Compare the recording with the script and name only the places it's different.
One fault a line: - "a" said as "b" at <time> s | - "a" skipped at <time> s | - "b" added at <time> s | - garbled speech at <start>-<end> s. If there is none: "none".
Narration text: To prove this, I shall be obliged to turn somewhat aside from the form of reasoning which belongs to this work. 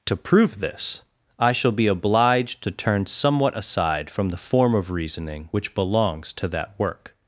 - "this" said as "that" at 6.5 s